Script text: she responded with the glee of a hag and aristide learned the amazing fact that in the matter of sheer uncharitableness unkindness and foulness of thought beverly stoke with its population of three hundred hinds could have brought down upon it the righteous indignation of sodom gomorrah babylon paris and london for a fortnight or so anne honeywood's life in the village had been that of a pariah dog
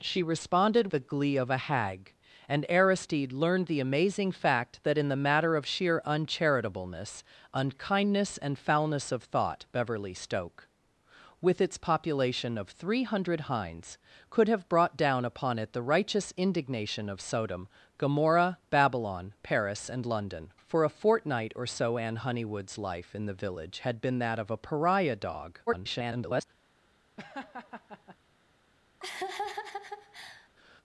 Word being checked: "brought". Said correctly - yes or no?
yes